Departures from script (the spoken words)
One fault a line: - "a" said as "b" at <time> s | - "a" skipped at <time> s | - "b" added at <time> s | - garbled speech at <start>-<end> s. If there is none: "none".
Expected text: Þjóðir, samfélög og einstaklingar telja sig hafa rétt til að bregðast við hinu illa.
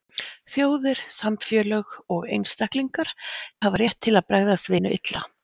- "telja sig" skipped at 3.1 s
- "við" skipped at 4.7 s